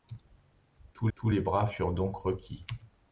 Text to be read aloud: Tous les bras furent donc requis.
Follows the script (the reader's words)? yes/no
no